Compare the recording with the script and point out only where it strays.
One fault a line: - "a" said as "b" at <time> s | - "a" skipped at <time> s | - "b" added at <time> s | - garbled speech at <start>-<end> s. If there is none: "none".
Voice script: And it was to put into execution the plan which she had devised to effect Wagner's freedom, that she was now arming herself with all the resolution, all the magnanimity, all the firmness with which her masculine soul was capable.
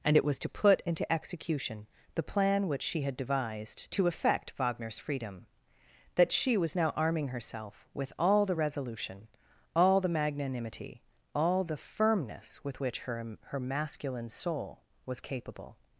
- "her" added at 13.4 s